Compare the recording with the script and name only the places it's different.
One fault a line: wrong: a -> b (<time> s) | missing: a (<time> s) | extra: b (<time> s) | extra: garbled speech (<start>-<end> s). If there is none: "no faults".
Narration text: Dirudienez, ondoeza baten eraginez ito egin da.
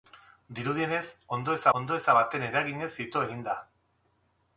extra: ondoeza (1.8 s)